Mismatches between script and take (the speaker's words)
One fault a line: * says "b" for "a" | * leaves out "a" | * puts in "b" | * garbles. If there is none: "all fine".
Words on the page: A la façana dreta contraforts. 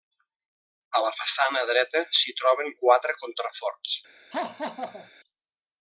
* puts in "s'hi troben quatre"